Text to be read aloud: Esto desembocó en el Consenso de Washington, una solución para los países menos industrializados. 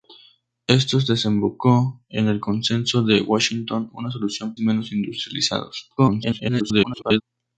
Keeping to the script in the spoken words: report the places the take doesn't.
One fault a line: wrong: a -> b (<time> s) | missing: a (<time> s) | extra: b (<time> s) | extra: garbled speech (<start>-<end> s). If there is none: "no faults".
missing: para los países (4.5 s)
extra: garbled speech (6.0-7.2 s)